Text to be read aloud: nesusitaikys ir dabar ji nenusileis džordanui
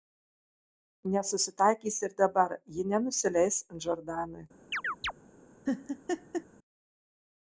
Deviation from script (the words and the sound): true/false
true